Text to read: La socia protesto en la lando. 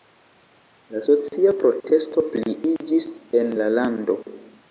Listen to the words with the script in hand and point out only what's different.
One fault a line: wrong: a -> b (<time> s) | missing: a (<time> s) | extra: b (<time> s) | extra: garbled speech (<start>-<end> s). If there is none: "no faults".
extra: pliiĝis (2.4 s)